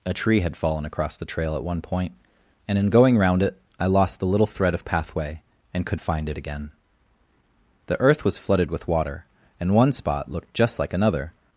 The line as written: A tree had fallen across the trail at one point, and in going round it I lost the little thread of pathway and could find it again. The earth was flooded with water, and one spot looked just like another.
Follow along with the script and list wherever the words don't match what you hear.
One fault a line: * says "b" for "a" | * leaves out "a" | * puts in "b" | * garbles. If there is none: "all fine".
all fine